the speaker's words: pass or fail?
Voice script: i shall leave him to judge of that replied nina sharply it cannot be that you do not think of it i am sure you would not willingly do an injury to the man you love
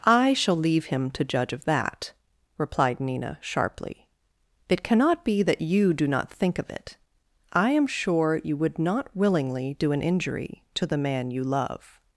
pass